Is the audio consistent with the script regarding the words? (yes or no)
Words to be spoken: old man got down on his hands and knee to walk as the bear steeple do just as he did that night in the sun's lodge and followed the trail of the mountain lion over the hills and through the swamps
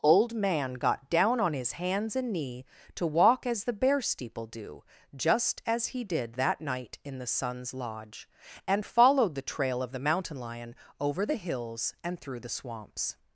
yes